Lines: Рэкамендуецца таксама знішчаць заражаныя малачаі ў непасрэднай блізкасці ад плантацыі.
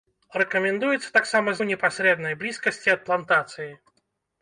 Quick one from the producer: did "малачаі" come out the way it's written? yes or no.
no